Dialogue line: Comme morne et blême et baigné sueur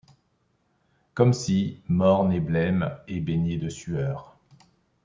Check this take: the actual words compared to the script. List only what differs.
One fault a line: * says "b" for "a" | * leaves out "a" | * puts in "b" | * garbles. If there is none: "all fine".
* puts in "si"
* puts in "de"